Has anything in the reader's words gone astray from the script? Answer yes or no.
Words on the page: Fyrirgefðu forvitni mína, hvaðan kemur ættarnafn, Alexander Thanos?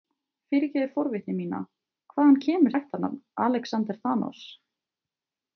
no